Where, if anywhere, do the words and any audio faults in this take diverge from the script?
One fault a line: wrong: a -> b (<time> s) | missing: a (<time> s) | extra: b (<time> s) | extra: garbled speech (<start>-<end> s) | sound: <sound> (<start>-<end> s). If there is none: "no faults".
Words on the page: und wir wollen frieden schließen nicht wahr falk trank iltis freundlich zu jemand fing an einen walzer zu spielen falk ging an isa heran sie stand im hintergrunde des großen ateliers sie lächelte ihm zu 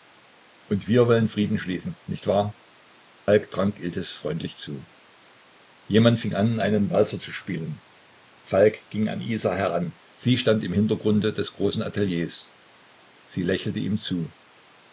sound: dropout (3.2-3.3 s)